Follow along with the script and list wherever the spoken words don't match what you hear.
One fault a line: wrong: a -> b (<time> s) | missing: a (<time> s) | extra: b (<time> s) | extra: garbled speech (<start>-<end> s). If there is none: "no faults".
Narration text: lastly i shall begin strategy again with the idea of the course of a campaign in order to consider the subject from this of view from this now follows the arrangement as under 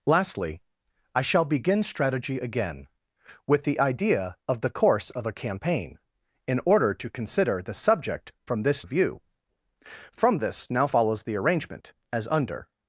no faults